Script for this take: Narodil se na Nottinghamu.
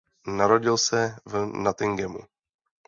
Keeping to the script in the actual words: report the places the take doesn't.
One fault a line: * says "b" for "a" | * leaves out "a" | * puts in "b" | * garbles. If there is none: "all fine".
* says "v" for "na"